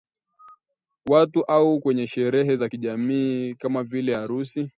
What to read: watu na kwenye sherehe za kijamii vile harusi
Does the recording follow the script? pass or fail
fail